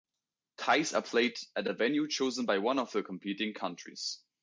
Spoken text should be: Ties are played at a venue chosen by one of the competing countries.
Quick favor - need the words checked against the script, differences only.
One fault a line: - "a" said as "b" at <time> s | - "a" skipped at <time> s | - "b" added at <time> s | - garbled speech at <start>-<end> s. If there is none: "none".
none